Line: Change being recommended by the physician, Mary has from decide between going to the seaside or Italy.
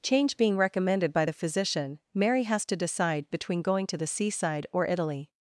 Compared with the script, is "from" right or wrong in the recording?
wrong